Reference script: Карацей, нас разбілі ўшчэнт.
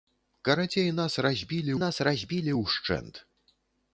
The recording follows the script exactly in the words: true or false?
false